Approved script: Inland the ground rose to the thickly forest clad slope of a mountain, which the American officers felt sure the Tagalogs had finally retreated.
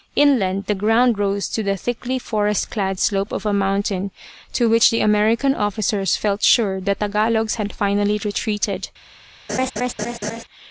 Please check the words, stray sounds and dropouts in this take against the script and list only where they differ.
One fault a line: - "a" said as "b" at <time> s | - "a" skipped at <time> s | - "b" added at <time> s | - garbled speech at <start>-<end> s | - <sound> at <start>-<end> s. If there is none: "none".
- "to" added at 4.5 s
- laugh at 9.5-10.4 s